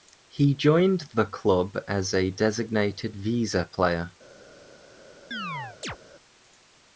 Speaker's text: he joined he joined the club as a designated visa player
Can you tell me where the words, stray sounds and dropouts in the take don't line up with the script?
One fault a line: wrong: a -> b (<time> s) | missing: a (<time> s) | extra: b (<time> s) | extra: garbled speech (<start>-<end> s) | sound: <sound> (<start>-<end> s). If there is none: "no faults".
missing: he joined (1.0 s)
sound: chirp (5.3-6.0 s)